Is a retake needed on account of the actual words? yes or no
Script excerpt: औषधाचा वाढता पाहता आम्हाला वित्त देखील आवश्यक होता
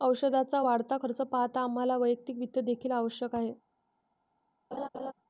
yes